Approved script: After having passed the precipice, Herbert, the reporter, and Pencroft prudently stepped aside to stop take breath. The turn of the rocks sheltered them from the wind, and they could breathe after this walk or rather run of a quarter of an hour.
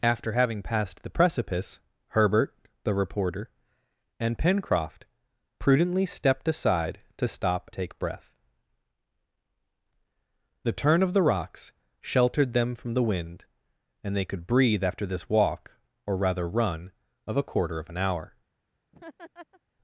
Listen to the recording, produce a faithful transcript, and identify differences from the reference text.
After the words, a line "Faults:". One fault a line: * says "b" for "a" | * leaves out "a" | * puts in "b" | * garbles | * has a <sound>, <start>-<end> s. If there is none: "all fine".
After having passed the precipice, Herbert, the reporter, and Pencroft prudently stepped aside to stop take breath. The turn of the rocks sheltered them from the wind, and they could breathe after this walk or rather run of a quarter of an hour.
Faults:
* has a laugh, 18.9-19.6 s